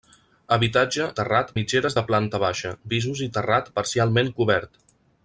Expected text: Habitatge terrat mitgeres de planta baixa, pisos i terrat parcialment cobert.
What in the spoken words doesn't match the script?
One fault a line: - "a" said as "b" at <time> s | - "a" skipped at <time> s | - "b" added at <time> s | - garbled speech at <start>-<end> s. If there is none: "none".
none